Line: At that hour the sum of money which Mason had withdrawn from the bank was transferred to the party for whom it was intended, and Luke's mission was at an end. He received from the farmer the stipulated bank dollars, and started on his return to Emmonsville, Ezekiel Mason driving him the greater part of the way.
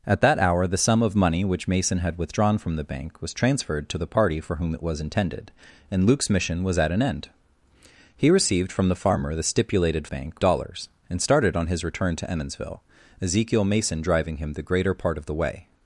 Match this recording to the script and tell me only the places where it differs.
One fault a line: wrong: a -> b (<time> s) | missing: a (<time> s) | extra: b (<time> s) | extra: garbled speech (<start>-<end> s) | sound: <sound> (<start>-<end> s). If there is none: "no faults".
no faults